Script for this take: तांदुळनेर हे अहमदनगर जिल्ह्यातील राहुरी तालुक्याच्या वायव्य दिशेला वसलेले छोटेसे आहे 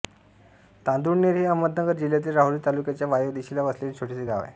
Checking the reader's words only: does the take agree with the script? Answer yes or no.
no